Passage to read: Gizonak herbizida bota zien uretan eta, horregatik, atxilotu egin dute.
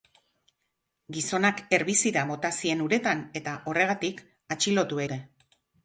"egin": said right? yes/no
no